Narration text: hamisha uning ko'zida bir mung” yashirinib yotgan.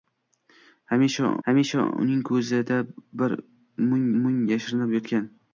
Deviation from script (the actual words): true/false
true